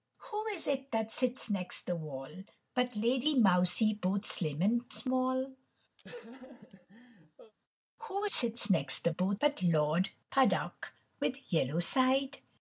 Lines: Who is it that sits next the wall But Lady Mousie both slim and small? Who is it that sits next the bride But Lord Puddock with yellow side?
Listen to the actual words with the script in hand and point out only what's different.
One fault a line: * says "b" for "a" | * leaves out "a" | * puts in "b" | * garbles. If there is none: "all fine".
* leaves out "is it that"
* says "both" for "bride"